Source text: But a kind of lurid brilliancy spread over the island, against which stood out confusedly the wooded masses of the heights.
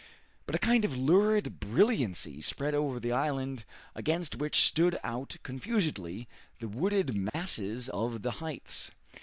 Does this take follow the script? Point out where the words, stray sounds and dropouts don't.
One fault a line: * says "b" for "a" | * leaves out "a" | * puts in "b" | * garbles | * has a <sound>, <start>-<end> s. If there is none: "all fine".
* has a dropout, 7.3-7.3 s